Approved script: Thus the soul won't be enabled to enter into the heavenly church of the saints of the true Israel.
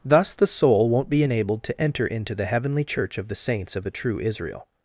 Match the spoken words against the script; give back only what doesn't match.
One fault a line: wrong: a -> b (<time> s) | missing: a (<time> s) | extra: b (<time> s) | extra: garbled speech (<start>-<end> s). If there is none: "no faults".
no faults